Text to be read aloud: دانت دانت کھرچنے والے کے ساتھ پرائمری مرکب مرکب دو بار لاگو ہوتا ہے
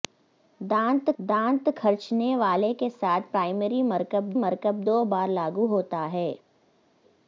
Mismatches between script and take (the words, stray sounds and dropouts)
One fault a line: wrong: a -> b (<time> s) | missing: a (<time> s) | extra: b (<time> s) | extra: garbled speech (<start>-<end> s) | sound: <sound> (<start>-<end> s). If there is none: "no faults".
no faults